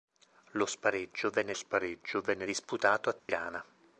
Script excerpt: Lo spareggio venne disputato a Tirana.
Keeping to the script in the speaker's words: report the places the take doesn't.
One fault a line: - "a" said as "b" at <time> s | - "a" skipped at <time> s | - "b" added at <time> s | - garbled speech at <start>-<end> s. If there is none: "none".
- "spareggio venne" added at 1.5 s